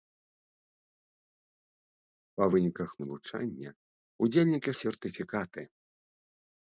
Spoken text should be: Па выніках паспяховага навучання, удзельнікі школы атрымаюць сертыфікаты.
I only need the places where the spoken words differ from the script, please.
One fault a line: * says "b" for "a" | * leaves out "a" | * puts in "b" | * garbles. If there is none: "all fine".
* leaves out "паспяховага"
* leaves out "школы атрымаюць"